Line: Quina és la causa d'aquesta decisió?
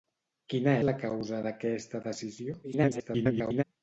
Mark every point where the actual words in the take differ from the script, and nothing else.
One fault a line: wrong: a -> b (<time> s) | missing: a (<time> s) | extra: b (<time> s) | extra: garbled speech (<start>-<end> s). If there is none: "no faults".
missing: és (0.7 s)
extra: garbled speech (2.6-3.6 s)